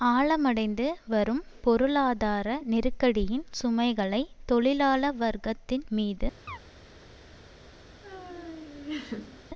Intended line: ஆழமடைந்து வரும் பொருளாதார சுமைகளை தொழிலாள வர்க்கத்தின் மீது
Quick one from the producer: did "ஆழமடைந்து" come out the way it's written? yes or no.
yes